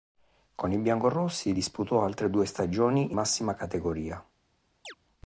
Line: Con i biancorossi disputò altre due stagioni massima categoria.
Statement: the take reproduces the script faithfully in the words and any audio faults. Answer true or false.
false